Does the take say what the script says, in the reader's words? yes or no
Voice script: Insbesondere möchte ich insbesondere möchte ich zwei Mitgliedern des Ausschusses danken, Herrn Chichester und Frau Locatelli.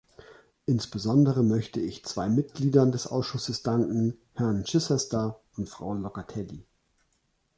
no